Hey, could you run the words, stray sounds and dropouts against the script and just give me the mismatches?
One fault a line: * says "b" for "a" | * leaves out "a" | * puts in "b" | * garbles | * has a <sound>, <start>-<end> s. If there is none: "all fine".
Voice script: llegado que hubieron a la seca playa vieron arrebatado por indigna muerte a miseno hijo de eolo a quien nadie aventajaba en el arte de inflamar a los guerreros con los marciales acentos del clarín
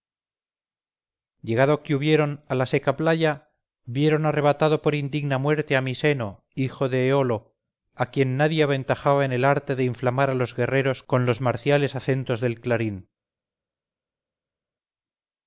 all fine